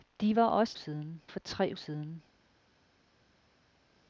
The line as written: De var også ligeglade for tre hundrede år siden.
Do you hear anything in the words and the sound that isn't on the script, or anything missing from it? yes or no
yes